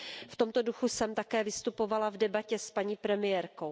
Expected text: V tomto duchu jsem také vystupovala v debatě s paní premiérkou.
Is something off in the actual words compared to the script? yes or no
no